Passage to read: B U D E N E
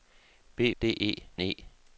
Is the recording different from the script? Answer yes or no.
yes